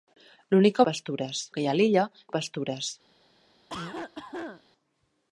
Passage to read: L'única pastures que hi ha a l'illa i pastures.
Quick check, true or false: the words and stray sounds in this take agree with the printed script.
false